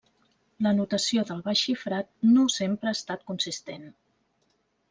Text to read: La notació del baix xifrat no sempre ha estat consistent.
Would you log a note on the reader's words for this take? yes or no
no